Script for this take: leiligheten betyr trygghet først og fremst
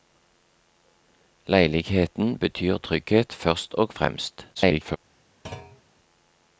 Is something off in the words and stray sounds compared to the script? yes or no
yes